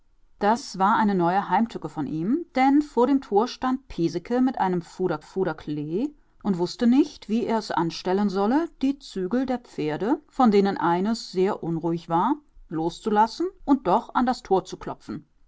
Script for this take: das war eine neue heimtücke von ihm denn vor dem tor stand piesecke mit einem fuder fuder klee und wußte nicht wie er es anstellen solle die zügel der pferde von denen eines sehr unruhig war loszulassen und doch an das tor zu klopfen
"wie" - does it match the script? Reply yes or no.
yes